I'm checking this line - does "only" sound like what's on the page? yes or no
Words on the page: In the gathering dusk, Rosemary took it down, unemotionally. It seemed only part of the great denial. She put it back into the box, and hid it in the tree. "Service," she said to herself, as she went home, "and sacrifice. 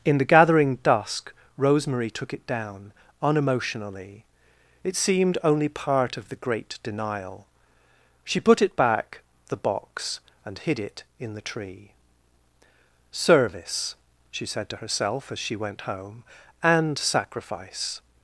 yes